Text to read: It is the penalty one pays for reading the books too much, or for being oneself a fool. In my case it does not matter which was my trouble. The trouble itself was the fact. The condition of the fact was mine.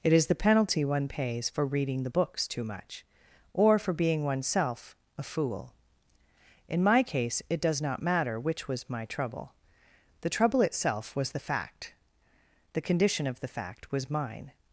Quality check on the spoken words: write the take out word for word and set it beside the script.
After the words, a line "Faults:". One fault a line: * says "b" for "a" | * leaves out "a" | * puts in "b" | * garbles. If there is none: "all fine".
It is the penalty one pays for reading the books too much, or for being oneself a fool. In my case it does not matter which was my trouble. The trouble itself was the fact. The condition of the fact was mine.
Faults:
all fine